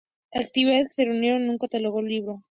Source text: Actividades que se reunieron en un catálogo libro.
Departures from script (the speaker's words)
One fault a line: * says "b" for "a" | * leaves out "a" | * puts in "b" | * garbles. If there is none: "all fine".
all fine